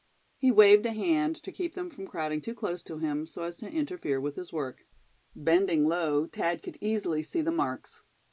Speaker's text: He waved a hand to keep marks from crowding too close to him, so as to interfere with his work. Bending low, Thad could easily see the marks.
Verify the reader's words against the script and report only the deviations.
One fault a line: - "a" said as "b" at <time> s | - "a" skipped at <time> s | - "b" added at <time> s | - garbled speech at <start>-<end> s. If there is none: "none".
- "marks" said as "them" at 1.7 s